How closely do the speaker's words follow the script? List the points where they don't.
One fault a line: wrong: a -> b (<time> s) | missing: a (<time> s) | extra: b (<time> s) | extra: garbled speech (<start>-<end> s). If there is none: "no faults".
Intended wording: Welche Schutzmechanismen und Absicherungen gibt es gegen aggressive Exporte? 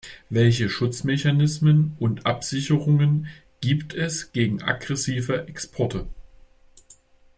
no faults